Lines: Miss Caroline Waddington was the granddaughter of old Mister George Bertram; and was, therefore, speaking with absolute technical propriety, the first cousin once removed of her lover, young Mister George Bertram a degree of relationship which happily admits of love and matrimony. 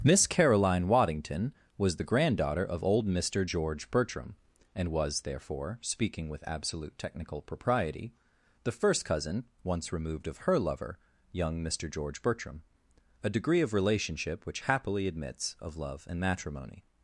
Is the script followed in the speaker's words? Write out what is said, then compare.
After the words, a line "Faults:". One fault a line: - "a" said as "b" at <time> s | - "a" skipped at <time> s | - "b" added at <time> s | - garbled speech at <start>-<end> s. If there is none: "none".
Miss Caroline Waddington was the granddaughter of old Mister George Bertram; and was, therefore, speaking with absolute technical propriety, the first cousin once removed of her lover, young Mister George Bertram a degree of relationship which happily admits of love and matrimony.
Faults:
none